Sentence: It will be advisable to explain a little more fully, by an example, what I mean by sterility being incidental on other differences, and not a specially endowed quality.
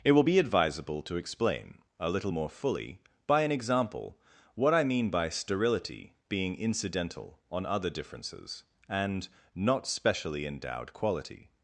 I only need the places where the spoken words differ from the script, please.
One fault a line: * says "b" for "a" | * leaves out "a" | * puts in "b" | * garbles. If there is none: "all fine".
* leaves out "a"